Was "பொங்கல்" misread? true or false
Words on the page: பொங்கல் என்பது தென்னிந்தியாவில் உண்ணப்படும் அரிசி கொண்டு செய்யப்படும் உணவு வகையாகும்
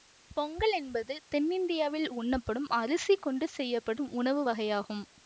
false